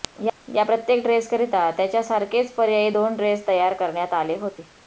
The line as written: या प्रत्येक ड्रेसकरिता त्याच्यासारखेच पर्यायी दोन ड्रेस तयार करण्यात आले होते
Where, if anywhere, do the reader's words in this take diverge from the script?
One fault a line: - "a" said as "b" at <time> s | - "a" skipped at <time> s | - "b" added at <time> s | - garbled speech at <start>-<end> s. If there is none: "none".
none